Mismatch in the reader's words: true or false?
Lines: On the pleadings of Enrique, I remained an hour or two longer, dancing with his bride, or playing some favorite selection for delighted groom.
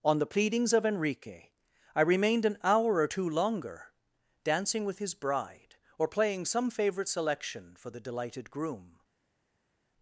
true